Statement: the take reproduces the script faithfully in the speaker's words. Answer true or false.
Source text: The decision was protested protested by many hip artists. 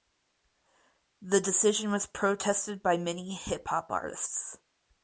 false